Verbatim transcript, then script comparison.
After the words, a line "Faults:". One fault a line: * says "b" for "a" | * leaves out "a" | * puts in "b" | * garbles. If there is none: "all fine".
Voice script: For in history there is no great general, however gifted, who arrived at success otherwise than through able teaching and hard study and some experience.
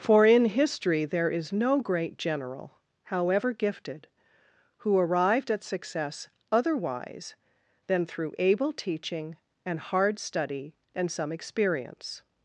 For in history there is no great general, however gifted, who arrived at success otherwise than through able teaching and hard study and some experience.
Faults:
all fine